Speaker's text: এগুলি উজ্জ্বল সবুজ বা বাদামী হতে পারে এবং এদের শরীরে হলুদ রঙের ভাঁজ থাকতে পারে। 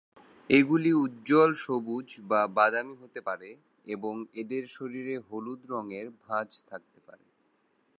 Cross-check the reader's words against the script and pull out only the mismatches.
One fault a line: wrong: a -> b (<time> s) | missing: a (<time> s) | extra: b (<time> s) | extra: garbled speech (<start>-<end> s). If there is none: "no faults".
no faults